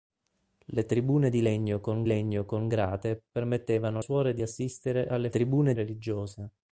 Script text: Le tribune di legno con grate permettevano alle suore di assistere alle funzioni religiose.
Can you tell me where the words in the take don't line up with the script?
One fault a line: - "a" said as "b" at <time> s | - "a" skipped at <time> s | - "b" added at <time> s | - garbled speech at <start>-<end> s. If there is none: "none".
- "legno con" added at 2.1 s
- "alle" skipped at 4.0 s
- "funzioni" said as "tribune" at 5.3 s